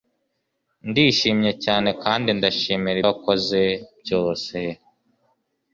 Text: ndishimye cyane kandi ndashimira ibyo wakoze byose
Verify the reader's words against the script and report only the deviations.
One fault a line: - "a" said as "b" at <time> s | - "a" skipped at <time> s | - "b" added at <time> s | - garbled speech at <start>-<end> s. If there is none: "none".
- "ibyo" skipped at 3.0 s